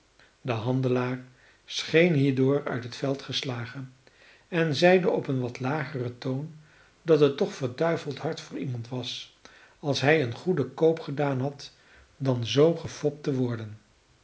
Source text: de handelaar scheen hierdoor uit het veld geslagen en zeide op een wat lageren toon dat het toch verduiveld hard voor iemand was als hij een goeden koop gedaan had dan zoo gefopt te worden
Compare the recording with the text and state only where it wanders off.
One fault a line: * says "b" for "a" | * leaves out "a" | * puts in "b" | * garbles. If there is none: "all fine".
all fine